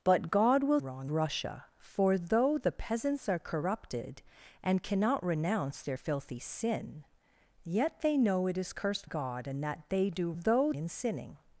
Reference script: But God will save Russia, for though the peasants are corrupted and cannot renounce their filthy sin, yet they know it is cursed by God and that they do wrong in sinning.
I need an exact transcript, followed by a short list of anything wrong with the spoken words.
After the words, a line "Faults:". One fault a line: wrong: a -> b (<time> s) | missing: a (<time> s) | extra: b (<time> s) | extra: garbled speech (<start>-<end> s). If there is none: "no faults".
But God will wrong Russia, for though the peasants are corrupted and cannot renounce their filthy sin, yet they know it is cursed God and that they do though in sinning.
Faults:
wrong: save -> wrong (0.8 s)
missing: by (9.1 s)
wrong: wrong -> though (10.3 s)